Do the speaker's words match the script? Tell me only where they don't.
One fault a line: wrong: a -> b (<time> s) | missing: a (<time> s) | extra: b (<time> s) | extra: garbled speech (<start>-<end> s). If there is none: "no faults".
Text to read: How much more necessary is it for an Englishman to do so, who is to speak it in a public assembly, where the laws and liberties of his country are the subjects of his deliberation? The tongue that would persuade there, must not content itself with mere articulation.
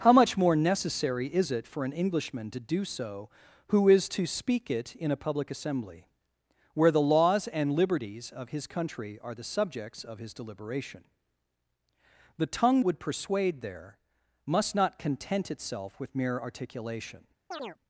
missing: that (12.8 s)